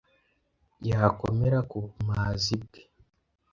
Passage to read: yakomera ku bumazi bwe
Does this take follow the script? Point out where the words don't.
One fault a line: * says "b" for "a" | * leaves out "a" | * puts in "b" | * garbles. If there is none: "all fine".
all fine